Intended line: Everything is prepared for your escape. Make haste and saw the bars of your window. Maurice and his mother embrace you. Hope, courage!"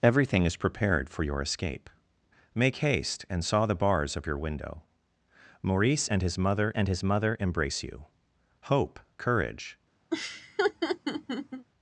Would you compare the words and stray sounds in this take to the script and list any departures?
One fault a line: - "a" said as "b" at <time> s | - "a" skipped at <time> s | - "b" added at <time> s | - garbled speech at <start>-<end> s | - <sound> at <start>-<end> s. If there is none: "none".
- "and his mother" added at 6.7 s
- laugh at 10.1-11.7 s